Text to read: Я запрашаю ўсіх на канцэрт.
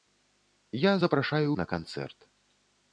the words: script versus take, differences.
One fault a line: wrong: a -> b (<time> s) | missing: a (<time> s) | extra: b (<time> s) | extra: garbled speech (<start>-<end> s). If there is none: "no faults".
missing: ўсіх (1.5 s)